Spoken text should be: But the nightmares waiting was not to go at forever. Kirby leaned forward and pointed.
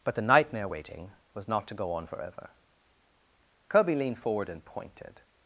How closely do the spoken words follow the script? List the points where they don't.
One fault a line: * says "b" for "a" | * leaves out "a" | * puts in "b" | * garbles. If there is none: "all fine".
* says "nightmare" for "nightmares"
* says "on" for "at"